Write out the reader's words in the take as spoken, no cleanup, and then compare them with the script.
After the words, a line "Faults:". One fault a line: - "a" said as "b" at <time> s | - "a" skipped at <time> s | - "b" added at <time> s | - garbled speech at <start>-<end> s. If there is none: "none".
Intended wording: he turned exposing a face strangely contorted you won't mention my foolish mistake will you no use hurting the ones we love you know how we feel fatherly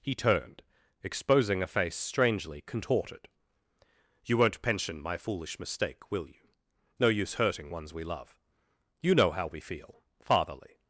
he turned exposing a face strangely contorted you won't pension my foolish mistake will you no use hurting ones we love you know how we feel fatherly
Faults:
- "mention" said as "pension" at 4.6 s
- "the" skipped at 7.7 s